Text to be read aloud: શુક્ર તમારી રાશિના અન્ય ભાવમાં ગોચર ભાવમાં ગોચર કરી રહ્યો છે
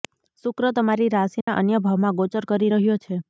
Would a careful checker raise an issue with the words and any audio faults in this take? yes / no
yes